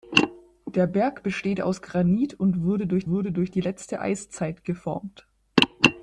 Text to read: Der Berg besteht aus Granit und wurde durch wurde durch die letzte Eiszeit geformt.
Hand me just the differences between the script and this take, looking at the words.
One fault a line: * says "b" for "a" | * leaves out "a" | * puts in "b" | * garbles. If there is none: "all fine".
all fine